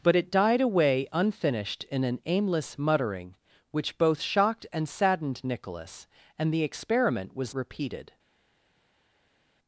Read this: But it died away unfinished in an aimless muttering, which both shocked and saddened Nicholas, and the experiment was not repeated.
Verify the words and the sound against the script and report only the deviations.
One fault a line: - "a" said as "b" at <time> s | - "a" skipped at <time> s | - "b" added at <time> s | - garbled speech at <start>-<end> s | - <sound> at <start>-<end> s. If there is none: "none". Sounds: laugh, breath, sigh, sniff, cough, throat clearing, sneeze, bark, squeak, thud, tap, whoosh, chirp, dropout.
- "not" skipped at 7.5 s